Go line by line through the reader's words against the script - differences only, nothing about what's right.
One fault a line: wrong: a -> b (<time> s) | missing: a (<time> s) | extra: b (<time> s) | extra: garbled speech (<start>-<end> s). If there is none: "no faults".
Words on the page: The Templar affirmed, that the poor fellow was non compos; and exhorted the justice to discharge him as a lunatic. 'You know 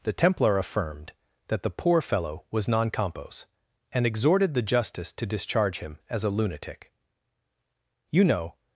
no faults